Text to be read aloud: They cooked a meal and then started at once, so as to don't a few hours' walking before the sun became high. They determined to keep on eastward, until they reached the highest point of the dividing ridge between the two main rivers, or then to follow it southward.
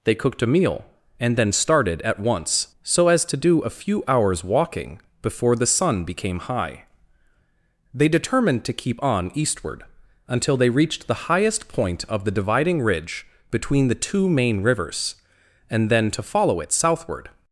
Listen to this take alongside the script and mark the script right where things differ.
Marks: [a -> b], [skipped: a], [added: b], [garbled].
They cooked a meal and then started at once, so as to [don't -> do] a few hours' walking before the sun became high. They determined to keep on eastward, until they reached the highest point of the dividing ridge between the two main rivers, [or -> and] then to follow it southward.